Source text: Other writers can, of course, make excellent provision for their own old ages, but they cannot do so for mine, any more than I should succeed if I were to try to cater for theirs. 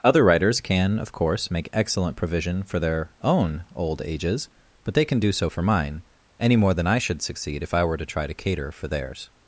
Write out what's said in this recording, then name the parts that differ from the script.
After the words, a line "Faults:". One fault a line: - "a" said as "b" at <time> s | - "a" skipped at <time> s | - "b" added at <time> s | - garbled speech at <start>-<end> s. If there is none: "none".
Other writers can, of course, make excellent provision for their own old ages, but they can do so for mine, any more than I should succeed if I were to try to cater for theirs.
Faults:
- "cannot" said as "can" at 5.0 s